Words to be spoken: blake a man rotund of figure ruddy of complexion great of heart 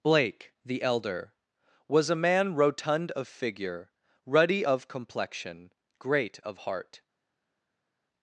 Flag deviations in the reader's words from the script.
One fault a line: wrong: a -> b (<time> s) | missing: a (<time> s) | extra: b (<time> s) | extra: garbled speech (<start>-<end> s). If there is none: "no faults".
extra: the elder was (0.7 s)